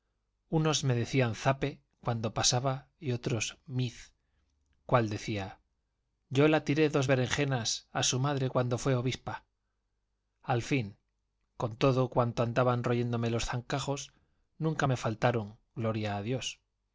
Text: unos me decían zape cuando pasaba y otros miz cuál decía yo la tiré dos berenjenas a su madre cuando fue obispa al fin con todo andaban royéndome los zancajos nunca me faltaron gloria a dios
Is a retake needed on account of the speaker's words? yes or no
yes